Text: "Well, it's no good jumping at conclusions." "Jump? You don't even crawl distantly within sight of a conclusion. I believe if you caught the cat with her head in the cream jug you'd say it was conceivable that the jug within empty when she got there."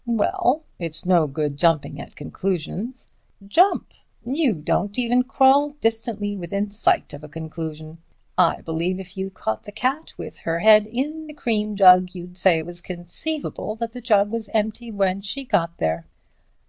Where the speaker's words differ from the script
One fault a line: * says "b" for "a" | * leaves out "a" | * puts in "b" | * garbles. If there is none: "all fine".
* says "was" for "within"